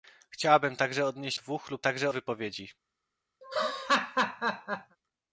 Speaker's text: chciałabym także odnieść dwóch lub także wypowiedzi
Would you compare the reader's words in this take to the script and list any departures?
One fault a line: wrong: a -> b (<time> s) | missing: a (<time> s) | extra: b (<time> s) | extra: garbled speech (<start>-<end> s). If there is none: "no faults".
no faults